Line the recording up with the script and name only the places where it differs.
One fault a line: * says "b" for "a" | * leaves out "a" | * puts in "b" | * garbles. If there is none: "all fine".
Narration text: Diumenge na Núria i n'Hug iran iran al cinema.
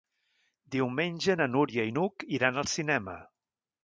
* leaves out "iran"